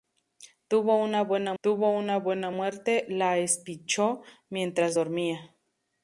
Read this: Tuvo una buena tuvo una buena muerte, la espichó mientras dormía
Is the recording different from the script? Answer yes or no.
no